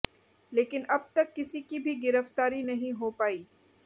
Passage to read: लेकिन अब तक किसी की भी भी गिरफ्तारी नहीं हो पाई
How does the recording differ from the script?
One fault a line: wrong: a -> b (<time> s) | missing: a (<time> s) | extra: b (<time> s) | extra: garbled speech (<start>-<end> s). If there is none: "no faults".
missing: भी (1.9 s)